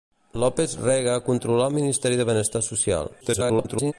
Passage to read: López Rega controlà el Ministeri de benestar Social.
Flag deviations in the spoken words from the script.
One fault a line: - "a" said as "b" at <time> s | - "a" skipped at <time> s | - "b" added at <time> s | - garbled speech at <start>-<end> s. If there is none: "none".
- garbled speech at 3.2-3.9 s